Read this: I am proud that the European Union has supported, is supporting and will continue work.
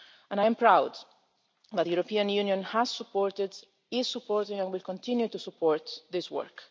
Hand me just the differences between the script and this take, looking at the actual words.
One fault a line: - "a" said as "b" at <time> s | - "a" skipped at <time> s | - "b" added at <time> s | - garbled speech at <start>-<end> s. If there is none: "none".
- "to support this" added at 5.3 s